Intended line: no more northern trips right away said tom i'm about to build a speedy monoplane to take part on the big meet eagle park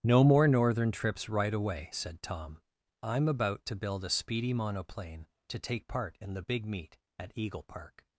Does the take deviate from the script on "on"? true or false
true